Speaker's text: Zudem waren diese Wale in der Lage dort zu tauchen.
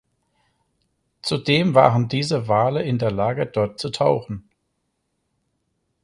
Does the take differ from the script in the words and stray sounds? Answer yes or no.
no